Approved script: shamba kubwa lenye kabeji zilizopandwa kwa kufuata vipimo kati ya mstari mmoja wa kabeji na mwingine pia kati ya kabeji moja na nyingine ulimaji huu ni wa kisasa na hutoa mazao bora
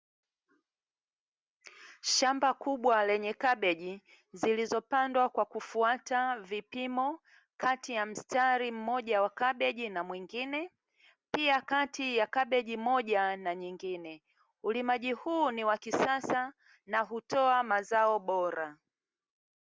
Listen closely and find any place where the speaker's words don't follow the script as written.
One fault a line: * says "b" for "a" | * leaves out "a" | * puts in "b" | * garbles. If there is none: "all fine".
all fine